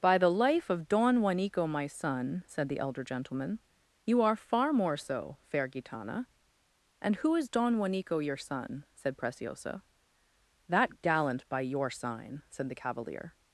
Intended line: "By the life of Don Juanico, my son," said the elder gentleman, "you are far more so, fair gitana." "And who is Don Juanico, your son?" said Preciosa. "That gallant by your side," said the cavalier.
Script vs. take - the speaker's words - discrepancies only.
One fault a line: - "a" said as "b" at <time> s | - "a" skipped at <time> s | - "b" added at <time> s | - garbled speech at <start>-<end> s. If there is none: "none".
- "side" said as "sign" at 11.9 s